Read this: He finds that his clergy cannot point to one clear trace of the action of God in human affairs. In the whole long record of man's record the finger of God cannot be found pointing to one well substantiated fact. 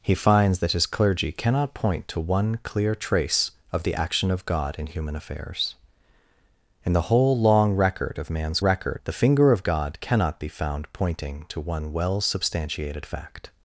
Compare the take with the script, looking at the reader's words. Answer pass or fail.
pass